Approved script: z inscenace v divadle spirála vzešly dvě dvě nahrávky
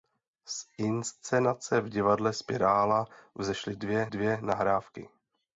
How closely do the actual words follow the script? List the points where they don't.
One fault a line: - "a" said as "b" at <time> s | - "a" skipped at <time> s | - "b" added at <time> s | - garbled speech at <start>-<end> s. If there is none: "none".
none